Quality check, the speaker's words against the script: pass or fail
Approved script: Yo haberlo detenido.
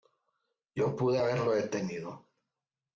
fail